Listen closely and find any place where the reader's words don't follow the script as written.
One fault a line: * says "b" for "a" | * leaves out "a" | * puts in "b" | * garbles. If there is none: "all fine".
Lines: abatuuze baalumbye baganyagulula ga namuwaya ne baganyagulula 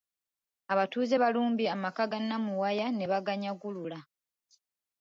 * says "amaka" for "baganyagulula"